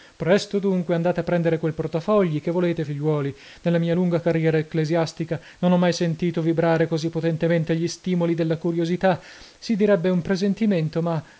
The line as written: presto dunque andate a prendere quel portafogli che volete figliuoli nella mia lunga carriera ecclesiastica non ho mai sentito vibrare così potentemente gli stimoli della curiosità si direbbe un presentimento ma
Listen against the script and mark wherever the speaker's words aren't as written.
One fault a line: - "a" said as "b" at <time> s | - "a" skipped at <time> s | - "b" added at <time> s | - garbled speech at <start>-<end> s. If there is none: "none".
none